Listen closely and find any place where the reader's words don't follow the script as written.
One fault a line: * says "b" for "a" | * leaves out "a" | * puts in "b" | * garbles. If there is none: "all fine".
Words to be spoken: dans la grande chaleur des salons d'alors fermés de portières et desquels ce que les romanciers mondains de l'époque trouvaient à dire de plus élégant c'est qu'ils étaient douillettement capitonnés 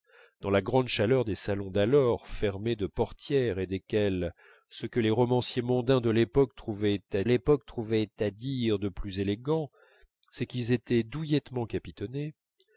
* puts in "l'époque trouvaient à"